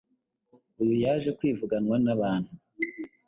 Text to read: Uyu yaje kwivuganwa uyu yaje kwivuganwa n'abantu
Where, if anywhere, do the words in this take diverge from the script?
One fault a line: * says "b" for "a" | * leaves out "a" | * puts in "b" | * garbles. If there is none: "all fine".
* leaves out "uyu yaje kwivuganwa"